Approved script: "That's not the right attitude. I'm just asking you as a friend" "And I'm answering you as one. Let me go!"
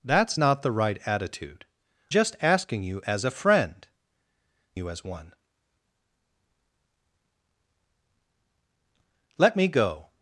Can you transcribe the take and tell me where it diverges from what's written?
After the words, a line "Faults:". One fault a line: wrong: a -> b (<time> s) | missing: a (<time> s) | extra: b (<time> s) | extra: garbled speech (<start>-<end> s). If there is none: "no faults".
"That's not the right attitude. Just asking you as a friend" "You as one. Let me go!"
Faults:
missing: I'm (1.6 s)
missing: And I'm answering (3.9 s)